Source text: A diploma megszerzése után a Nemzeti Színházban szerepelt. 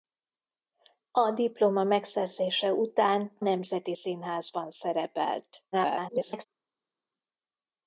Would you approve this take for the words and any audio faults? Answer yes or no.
no